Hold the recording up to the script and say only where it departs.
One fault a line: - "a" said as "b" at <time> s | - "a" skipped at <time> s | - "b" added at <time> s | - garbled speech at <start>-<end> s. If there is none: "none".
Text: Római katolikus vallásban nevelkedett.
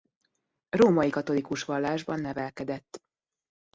none